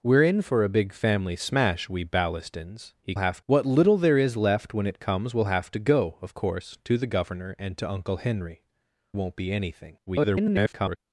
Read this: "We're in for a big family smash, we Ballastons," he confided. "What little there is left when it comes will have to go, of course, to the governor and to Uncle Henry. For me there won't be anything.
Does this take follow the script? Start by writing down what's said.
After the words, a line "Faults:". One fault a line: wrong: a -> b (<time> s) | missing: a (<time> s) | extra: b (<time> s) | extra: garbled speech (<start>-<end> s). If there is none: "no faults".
"We're in for a big family smash, we Ballastons," he have. "What little there is left when it comes will have to go, of course, to the governor and to Uncle Henry. Won't be anything. [garbled]
Faults:
wrong: confided -> have (3.2 s)
missing: For me there (8.6 s)
extra: garbled speech (10.1-11.0 s)